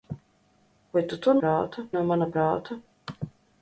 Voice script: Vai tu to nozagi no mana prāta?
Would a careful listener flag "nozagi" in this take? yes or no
yes